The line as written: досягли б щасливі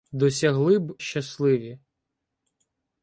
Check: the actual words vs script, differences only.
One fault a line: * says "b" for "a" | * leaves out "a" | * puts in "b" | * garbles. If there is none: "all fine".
all fine